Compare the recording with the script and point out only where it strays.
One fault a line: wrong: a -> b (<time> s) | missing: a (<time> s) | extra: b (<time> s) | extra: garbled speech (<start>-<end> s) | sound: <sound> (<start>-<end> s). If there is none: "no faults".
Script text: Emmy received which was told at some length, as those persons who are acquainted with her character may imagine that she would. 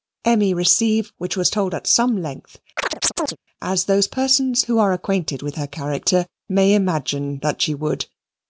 sound: chirp (2.8-3.4 s)